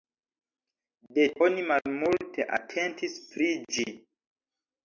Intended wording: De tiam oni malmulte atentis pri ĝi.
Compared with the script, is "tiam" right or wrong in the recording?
wrong